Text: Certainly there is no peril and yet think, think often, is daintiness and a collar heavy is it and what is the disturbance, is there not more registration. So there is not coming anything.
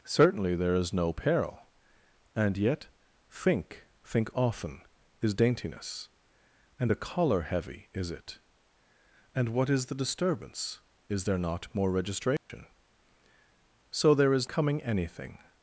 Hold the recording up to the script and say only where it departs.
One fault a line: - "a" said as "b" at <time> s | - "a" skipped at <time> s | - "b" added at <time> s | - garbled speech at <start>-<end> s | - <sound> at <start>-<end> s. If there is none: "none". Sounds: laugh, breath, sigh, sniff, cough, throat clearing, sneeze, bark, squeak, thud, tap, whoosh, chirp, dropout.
- dropout at 12.4-12.5 s
- "not" skipped at 14.5 s